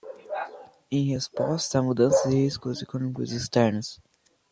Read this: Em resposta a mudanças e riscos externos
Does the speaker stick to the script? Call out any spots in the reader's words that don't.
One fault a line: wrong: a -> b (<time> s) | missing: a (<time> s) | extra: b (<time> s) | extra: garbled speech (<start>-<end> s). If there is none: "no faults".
extra: econômicos (2.8 s)